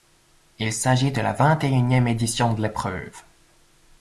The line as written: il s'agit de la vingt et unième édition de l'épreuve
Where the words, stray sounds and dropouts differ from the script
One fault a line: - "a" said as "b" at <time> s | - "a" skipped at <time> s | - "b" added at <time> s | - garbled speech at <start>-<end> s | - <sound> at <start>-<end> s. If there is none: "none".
none